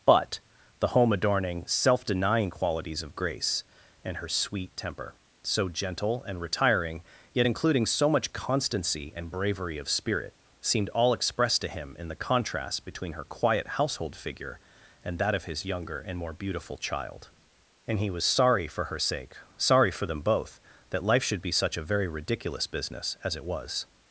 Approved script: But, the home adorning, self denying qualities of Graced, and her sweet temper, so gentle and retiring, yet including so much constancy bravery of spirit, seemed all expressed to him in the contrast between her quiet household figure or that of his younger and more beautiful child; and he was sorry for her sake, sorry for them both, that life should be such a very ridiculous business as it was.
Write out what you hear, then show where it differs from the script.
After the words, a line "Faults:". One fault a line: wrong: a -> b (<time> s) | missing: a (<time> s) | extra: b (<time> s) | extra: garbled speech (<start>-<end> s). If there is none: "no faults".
But, the home adorning, self denying qualities of Grace, and her sweet temper, so gentle and retiring, yet including so much constancy and bravery of spirit, seemed all expressed to him in the contrast between her quiet household figure and that of his younger and more beautiful child; and he was sorry for her sake, sorry for them both, that life should be such a very ridiculous business as it was.
Faults:
wrong: Graced -> Grace (3.1 s)
extra: and (9.1 s)
wrong: or -> and (15.0 s)